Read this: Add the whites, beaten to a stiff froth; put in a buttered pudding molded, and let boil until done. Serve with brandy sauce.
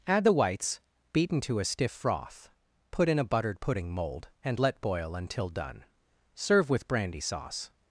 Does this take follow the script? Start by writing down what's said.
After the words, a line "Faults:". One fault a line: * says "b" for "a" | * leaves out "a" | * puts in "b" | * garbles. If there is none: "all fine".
Add the whites, beaten to a stiff froth; put in a buttered pudding mold, and let boil until done. Serve with brandy sauce.
Faults:
* says "mold" for "molded"